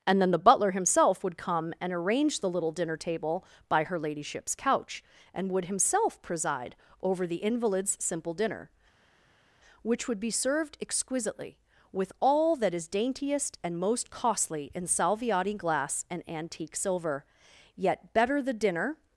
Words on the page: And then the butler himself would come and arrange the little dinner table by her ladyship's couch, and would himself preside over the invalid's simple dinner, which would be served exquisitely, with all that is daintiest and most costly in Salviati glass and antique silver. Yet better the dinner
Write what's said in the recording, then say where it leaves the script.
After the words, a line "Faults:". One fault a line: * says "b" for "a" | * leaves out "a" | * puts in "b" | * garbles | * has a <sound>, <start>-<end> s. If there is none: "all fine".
And then the butler himself would come and arrange the little dinner table by her ladyship's couch, and would himself preside over the invalid's simple dinner, which would be served exquisitely, with all that is daintiest and most costly in Salviati glass and antique silver. Yet better the dinner
Faults:
all fine